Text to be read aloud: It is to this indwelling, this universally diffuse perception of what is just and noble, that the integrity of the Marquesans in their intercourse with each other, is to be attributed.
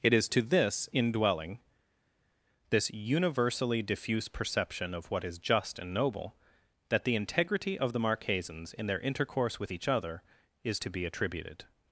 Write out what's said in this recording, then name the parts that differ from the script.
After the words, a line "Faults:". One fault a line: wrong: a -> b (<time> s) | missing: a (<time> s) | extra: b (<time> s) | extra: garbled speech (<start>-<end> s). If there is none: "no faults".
It is to this indwelling, this universally diffuse perception of what is just and noble, that the integrity of the Marquesans in their intercourse with each other, is to be attributed.
Faults:
no faults